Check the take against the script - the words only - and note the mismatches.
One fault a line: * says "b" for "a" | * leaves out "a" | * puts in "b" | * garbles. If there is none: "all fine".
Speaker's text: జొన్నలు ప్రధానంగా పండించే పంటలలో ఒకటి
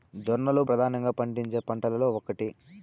all fine